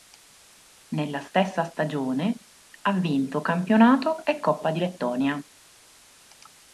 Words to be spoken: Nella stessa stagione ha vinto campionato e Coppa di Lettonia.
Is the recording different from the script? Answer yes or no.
no